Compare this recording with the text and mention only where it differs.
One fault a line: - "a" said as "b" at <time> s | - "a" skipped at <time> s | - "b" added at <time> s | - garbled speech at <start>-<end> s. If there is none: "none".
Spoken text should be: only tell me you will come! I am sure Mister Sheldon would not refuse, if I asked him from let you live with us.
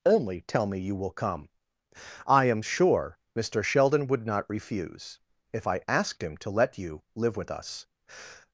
- "from" said as "to" at 6.4 s